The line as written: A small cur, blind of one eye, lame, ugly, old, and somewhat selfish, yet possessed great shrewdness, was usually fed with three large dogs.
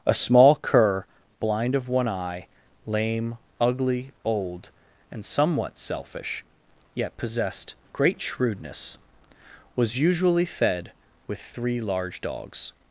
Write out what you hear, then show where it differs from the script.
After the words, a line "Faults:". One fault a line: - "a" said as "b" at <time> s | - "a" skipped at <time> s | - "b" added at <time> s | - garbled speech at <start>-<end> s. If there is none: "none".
A small cur, blind of one eye, lame, ugly, old, and somewhat selfish, yet possessed great shrewdness, was usually fed with three large dogs.
Faults:
none